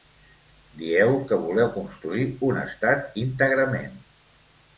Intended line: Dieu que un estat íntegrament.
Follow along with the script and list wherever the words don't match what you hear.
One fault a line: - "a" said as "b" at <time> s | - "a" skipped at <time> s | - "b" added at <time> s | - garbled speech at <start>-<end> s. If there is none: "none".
- "voleu construir" added at 1.4 s